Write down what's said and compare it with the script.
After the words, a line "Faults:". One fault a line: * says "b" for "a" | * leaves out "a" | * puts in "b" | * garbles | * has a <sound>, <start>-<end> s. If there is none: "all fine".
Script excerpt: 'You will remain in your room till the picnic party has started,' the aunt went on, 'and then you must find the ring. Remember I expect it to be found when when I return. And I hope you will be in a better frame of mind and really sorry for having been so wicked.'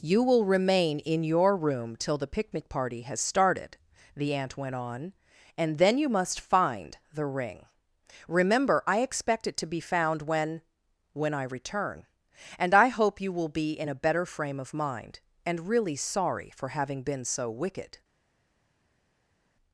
'You will remain in your room till the picnic party has started,' the aunt went on, 'and then you must find the ring. Remember I expect it to be found when when I return. And I hope you will be in a better frame of mind and really sorry for having been so wicked.'
Faults:
all fine